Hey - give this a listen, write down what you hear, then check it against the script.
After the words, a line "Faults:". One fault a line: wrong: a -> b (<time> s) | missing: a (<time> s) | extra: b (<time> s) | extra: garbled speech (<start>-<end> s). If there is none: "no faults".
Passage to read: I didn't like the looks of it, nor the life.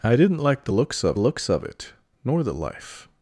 I didn't like the looks of looks of it, nor the life.
Faults:
extra: looks of (1.2 s)